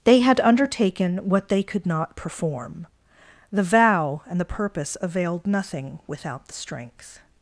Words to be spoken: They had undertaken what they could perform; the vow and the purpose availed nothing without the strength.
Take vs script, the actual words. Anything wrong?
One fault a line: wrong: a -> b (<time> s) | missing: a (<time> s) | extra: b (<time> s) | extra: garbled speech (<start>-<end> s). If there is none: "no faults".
extra: not (1.9 s)